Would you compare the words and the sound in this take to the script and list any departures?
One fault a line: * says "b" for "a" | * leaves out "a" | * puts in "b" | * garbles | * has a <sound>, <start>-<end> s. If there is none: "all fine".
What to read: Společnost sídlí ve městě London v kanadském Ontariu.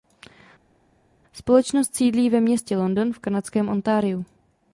all fine